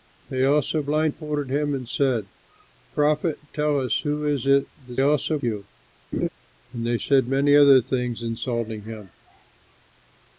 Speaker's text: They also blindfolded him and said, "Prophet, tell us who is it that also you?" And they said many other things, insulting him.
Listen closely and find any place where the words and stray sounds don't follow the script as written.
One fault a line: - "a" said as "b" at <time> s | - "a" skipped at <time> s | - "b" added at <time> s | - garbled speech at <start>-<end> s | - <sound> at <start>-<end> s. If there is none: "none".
- laugh at 6.1-6.3 s